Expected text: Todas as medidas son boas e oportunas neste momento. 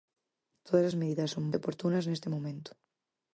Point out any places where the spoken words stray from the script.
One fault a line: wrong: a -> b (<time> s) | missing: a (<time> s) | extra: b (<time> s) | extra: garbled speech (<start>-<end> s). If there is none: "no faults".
missing: boas (1.4 s)